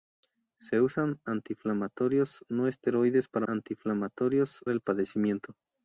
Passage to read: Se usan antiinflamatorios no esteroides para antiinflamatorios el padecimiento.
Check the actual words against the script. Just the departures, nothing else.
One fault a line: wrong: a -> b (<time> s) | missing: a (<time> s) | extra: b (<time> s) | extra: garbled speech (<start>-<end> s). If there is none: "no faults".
no faults